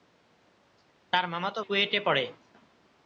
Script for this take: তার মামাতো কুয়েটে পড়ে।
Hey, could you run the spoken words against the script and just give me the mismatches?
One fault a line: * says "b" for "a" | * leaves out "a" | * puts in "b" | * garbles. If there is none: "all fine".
all fine